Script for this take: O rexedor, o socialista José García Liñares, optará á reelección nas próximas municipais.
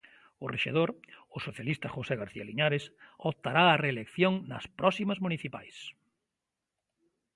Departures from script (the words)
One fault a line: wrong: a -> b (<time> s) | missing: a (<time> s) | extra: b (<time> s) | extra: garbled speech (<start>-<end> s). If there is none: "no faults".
no faults